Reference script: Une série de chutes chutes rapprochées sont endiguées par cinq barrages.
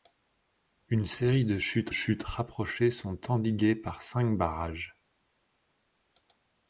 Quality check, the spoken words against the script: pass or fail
pass